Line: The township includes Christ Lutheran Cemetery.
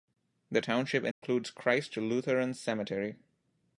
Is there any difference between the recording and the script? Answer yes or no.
no